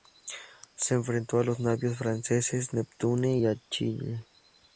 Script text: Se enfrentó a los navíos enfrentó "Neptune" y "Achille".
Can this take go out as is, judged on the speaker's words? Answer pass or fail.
fail